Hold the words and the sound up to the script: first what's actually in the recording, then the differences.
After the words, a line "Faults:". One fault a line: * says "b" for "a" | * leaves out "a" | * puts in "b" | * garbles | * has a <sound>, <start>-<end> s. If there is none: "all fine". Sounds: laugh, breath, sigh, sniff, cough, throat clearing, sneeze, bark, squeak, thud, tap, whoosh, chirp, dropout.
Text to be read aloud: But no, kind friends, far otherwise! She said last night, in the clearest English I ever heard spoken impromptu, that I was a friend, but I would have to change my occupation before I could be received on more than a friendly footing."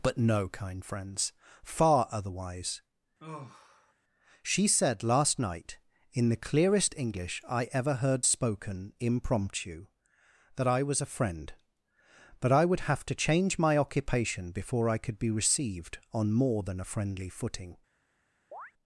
But no, kind friends, far otherwise! She said last night, in the clearest English I ever heard spoken impromptu, that I was a friend, but I would have to change my occupation before I could be received on more than a friendly footing."
Faults:
* has a sigh, 3.2-3.9 s
* has a chirp, 18.5-18.7 s